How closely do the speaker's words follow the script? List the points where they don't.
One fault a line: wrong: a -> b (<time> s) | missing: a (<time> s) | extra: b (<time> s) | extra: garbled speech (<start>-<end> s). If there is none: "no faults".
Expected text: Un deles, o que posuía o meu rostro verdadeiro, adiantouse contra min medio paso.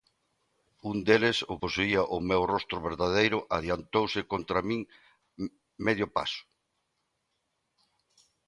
missing: que (1.6 s)